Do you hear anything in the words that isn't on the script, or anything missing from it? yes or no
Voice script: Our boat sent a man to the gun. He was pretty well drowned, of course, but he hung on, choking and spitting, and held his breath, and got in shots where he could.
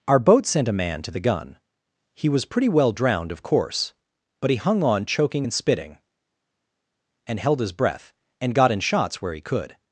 no